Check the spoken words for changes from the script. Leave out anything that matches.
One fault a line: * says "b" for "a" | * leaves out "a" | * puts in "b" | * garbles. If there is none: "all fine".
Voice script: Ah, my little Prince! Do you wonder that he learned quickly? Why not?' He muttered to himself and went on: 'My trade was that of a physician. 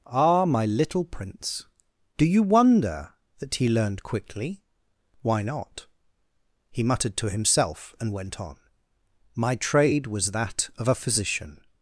all fine